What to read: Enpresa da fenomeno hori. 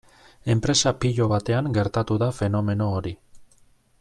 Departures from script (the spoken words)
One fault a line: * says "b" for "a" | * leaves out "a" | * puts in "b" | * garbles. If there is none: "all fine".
* puts in "pilo batean gertatu"